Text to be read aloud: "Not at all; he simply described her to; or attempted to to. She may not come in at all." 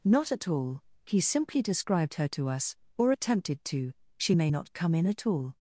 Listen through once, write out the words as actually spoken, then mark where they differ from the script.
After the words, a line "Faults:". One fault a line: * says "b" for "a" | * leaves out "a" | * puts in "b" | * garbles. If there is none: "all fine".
"Not at all; he simply described her to us; or attempted to. She may not come in at all."
Faults:
* puts in "us"
* leaves out "to"